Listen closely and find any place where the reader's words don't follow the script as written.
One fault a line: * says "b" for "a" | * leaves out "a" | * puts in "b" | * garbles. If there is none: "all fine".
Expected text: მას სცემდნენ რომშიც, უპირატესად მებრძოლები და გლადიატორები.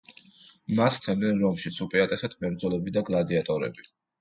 all fine